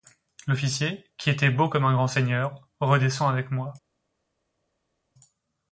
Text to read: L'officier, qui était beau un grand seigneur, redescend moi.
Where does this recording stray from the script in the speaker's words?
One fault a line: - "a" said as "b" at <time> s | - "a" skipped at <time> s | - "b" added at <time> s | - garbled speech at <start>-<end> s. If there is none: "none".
- "comme" added at 1.7 s
- "avec" added at 3.3 s